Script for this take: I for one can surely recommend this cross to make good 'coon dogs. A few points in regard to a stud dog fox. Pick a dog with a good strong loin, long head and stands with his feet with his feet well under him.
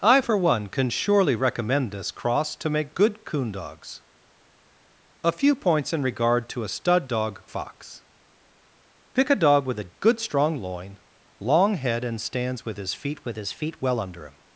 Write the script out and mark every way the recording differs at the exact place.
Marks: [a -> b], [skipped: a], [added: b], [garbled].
I for one can surely recommend this cross to make good 'coon dogs. A few points in regard to a stud dog fox. Pick a dog with a good strong loin, long head and stands with his feet with his feet well under him.